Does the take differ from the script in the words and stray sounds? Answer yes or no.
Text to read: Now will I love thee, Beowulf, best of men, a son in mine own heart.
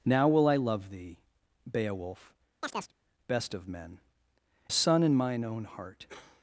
yes